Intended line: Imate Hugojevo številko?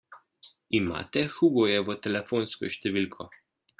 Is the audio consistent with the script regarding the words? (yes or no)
no